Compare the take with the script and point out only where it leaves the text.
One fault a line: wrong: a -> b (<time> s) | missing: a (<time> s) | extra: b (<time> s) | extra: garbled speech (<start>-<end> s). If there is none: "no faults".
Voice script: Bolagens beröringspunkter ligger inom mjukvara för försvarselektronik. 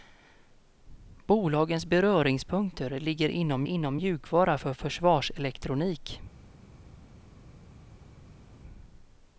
extra: inom (3.6 s)